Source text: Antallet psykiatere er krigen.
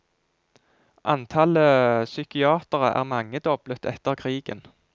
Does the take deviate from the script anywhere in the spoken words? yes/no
yes